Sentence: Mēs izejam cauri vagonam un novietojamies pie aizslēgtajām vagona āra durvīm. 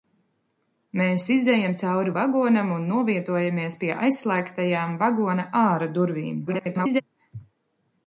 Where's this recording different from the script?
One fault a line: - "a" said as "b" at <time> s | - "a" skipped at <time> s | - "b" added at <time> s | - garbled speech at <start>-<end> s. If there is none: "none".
- garbled speech at 6.5-7.0 s